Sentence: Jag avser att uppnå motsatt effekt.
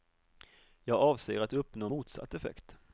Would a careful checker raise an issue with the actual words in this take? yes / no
no